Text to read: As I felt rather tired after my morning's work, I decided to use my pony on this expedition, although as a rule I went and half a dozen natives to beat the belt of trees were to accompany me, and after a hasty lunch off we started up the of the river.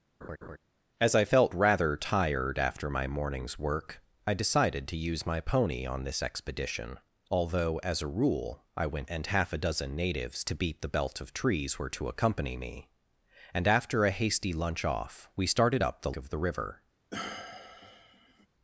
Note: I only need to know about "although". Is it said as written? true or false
true